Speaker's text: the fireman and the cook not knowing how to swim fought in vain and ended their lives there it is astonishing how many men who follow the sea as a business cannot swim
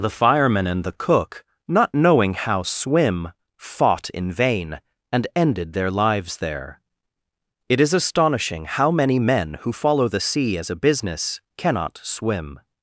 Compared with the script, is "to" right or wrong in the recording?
wrong